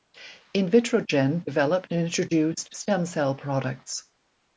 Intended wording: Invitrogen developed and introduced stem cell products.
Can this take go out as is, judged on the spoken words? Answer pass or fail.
pass